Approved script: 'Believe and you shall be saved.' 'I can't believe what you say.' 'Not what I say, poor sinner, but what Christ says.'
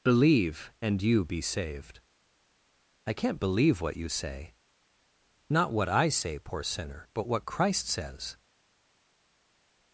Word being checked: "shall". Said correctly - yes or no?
no